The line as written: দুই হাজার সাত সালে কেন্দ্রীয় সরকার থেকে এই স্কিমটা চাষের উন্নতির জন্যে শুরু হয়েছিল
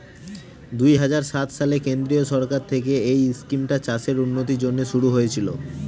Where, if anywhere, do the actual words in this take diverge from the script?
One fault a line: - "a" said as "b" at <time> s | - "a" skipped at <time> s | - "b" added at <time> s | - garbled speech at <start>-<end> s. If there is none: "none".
none